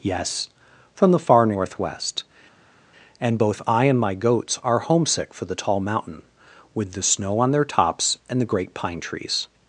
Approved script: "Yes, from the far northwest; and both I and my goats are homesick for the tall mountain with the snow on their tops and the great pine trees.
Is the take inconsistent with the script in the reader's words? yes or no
no